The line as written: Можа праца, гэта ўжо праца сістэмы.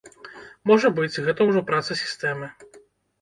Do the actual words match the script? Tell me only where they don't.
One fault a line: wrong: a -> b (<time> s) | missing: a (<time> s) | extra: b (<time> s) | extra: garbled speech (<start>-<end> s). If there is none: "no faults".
wrong: праца -> быць (1.0 s)